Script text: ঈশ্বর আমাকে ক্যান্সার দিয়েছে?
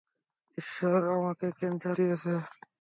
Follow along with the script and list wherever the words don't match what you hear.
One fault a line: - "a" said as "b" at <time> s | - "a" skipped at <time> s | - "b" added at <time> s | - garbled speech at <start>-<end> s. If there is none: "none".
none